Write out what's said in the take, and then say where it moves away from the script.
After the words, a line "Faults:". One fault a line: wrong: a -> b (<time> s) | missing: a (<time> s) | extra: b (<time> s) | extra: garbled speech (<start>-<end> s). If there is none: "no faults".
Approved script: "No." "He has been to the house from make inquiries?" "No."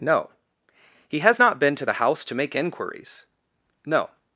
"No." "He has not been to the house to make inquiries?" "No."
Faults:
extra: not (1.4 s)
wrong: from -> to (2.2 s)